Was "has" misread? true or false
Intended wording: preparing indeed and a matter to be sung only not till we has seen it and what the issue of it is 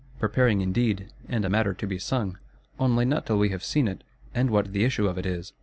true